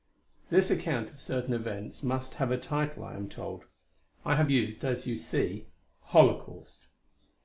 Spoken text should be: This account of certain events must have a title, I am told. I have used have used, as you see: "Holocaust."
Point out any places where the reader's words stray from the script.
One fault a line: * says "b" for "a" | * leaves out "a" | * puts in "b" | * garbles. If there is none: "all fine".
* leaves out "have used"